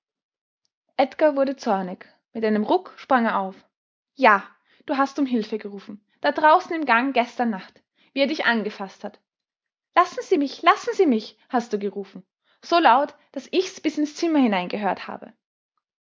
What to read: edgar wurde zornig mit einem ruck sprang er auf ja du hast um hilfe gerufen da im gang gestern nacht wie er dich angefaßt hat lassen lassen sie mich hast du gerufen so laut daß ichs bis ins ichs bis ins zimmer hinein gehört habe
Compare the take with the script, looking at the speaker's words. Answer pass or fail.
fail